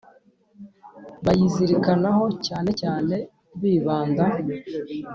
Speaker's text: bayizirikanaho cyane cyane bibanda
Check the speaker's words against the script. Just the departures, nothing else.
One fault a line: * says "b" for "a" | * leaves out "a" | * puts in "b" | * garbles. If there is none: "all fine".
all fine